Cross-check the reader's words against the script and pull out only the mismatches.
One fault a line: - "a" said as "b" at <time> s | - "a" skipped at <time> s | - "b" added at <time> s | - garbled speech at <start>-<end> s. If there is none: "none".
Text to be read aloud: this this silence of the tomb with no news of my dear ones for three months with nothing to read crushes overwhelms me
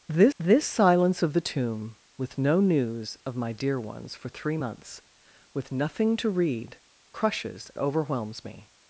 none